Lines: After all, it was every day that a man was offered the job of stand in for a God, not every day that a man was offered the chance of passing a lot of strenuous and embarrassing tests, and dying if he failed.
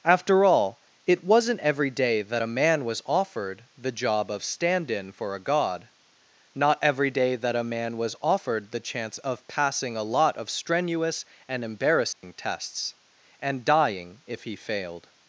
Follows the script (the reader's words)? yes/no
no